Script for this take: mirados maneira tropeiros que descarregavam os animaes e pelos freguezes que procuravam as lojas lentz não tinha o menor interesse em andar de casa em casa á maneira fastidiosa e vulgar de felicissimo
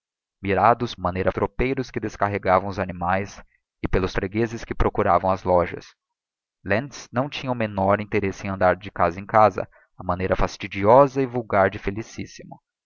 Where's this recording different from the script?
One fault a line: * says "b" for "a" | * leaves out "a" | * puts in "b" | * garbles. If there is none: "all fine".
all fine